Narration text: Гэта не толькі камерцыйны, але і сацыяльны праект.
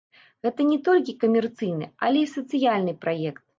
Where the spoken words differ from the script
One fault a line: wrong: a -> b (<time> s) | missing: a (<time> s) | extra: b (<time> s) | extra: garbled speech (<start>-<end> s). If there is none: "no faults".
no faults